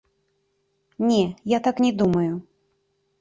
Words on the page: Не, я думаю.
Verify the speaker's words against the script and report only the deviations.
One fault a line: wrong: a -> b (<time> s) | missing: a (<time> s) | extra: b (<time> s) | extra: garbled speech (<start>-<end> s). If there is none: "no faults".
extra: так не (1.6 s)